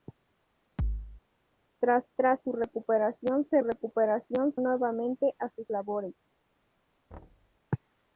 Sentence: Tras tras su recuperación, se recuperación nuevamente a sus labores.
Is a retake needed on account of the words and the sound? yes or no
yes